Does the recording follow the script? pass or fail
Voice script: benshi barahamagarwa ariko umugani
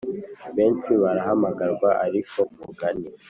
pass